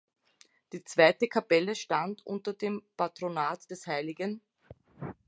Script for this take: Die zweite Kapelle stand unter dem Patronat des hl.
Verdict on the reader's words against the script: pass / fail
pass